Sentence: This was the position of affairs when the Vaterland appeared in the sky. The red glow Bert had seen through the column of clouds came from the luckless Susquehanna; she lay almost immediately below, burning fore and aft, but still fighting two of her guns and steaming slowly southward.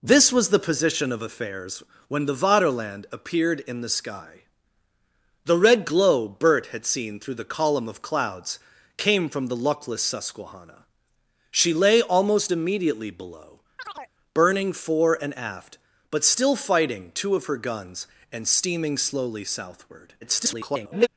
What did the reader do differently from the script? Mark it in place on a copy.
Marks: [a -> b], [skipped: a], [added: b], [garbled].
This was the position of affairs when the Vaterland appeared in the sky. The red glow Bert had seen through the column of clouds came from the luckless Susquehanna; she lay almost immediately below, burning fore and aft, but still fighting two of her guns and steaming slowly southward. [garbled]